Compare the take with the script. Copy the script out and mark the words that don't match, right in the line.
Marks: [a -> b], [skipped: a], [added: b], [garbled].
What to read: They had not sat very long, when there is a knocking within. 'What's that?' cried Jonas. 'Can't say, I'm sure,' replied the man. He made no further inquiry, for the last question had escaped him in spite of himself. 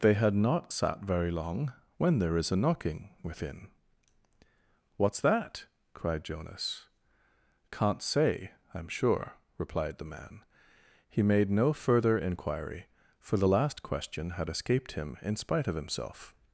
They had not sat very long, when there is a knocking within. 'What's that?' cried Jonas. 'Can't say, I'm sure,' replied the man. He made no further inquiry, for the last question had escaped him in spite of himself.